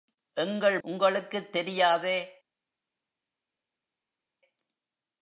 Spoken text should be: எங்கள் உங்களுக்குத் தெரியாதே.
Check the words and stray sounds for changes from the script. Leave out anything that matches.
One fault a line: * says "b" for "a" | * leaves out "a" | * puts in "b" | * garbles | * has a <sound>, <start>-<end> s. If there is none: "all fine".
all fine